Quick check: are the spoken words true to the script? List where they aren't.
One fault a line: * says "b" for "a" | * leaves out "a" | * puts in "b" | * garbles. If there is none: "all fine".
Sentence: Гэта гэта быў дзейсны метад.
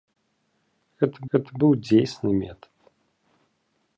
all fine